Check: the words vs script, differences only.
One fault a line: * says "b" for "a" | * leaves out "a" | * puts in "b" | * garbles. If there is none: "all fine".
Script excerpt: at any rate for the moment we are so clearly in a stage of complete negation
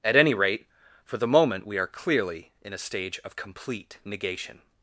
* leaves out "so"